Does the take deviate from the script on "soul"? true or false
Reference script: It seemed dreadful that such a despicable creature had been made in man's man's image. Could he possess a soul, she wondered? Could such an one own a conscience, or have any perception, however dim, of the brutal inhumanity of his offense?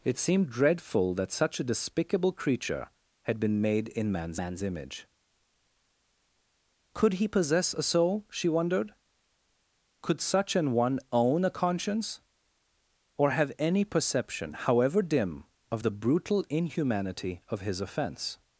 false